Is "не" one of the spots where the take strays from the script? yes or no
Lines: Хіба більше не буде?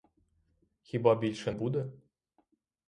yes